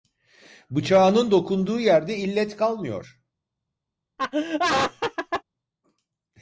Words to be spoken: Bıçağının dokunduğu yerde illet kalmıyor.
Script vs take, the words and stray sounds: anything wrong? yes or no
yes